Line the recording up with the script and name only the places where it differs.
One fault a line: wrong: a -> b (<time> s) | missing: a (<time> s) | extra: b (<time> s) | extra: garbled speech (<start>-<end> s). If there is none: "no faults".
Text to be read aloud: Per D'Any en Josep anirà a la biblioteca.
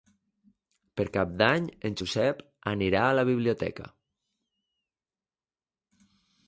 extra: Cap (1.2 s)